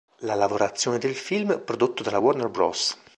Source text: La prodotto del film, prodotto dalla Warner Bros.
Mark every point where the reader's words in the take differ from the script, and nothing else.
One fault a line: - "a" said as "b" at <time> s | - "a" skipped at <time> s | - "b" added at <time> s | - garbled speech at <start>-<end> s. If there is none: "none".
- "prodotto" said as "lavorazione" at 0.3 s